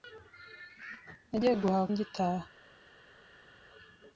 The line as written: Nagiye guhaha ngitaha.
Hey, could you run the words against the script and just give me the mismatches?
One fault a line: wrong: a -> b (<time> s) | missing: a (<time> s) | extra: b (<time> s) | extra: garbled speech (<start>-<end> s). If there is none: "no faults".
no faults